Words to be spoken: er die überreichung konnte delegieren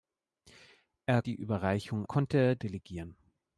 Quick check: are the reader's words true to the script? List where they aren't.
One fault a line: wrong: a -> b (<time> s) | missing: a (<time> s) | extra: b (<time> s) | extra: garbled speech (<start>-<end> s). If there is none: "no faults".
no faults